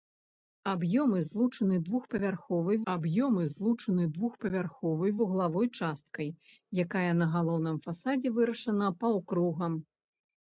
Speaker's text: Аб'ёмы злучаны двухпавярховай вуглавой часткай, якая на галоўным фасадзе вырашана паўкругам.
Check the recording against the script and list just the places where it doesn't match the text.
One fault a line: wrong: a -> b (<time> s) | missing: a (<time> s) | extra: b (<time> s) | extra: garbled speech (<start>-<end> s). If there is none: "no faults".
extra: аб'ёмы злучаны двухпавярховай (2.9 s)